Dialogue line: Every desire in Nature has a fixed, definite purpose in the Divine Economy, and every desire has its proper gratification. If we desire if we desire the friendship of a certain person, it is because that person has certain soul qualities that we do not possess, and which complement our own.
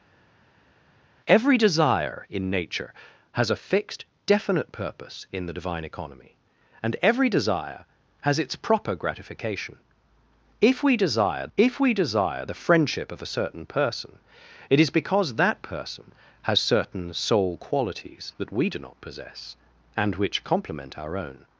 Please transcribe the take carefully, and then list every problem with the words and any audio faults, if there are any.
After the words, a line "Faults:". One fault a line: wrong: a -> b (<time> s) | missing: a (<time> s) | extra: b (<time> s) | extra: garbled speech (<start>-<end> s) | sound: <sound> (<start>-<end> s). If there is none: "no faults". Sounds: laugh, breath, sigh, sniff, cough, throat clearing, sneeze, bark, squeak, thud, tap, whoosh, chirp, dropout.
Every desire in Nature has a fixed, definite purpose in the Divine Economy, and every desire has its proper gratification. If we desire if we desire the friendship of a certain person, it is because that person has certain soul qualities that we do not possess, and which complement our own.
Faults:
no faults